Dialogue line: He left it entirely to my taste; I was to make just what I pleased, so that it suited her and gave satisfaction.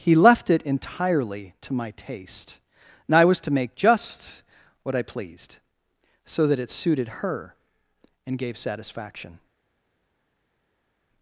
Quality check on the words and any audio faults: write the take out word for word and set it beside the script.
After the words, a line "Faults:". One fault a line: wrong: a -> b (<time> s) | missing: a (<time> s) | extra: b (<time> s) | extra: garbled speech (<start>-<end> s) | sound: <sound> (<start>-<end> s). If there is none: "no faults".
He left it entirely to my taste; and I was to make just what I pleased, so that it suited her and gave satisfaction.
Faults:
extra: and (3.1 s)